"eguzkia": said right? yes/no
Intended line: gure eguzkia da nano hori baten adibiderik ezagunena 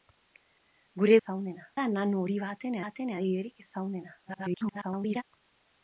no